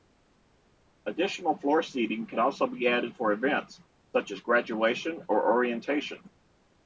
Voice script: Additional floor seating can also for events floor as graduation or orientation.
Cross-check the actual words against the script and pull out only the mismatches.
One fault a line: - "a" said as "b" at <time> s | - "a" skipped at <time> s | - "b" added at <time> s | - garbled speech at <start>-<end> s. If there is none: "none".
- "be added" added at 2.6 s
- "floor" said as "such" at 4.2 s